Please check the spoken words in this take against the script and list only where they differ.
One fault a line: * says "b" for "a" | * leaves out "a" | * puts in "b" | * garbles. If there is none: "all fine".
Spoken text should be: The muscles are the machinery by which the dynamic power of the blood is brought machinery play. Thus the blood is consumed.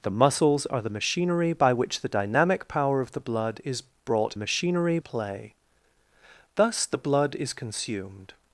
all fine